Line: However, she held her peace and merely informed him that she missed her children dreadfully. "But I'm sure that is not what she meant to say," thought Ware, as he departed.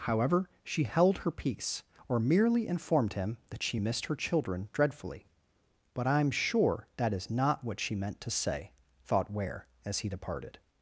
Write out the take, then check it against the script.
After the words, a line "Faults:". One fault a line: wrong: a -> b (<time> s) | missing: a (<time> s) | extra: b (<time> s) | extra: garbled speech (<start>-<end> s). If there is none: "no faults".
However, she held her peace or merely informed him that she missed her children dreadfully. "But I'm sure that is not what she meant to say," thought Ware, as he departed.
Faults:
wrong: and -> or (2.1 s)